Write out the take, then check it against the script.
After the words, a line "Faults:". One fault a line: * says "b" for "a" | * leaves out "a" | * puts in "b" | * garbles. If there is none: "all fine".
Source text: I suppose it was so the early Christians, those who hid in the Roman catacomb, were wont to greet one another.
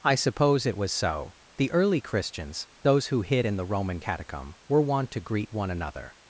I suppose it was so the early Christians, those who hid in the Roman catacomb, were wont to greet one another.
Faults:
all fine